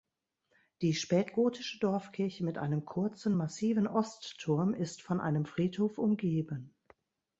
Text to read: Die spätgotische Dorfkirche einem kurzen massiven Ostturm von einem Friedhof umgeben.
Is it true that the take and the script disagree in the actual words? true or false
true